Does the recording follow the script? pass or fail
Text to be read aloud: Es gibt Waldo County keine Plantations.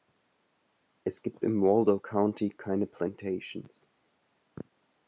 fail